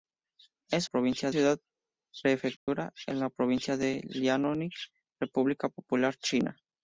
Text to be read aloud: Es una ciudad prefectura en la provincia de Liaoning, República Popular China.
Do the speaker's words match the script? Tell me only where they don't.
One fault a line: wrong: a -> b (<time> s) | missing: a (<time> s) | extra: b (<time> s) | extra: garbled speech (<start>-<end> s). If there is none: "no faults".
wrong: una -> provincia (0.8 s)